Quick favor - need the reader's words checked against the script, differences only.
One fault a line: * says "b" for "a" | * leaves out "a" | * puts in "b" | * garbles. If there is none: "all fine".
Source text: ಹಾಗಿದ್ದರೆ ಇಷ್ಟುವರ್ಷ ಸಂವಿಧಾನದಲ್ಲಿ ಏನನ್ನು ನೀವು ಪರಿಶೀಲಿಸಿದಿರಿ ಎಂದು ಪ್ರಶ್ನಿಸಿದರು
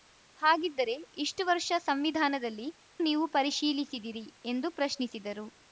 * leaves out "ಏನನ್ನು"